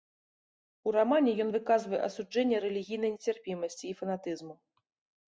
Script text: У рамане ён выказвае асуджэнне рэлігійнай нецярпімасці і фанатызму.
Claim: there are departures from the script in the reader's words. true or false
false